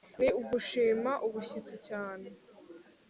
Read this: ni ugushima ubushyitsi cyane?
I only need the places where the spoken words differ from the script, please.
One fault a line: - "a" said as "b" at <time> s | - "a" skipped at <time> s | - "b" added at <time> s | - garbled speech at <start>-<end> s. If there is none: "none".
none